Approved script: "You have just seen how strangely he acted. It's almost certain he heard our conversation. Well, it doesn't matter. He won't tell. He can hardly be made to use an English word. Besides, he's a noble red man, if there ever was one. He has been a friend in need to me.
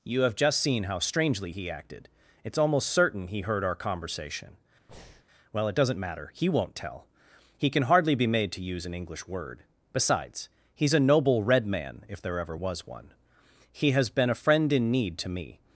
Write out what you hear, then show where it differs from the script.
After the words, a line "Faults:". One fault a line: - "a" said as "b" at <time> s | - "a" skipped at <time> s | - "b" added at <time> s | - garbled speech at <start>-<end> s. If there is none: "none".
"You have just seen how strangely he acted. It's almost certain he heard our conversation. Well, it doesn't matter. He won't tell. He can hardly be made to use an English word. Besides, he's a noble red man, if there ever was one. He has been a friend in need to me.
Faults:
none